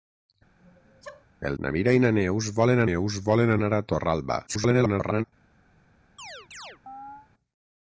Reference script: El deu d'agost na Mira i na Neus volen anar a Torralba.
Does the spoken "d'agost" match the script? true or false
false